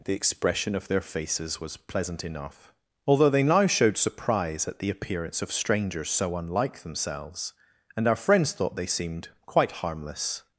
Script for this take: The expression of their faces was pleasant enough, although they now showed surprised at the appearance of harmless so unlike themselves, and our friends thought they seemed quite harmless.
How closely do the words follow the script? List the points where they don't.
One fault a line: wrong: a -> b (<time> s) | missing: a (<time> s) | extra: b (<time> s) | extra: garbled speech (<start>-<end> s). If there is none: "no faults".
wrong: surprised -> surprise (4.0 s)
wrong: harmless -> strangers (5.5 s)